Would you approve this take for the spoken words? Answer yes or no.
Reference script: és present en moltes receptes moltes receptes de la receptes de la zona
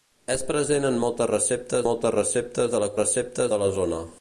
yes